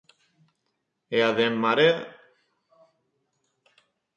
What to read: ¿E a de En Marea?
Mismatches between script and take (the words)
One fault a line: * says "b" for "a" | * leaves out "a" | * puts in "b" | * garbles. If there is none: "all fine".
all fine